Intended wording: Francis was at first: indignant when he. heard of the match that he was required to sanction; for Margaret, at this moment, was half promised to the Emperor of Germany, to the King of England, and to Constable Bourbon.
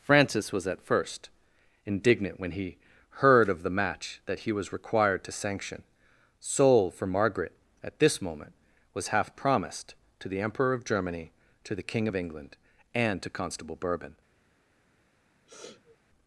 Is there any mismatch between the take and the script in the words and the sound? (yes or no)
yes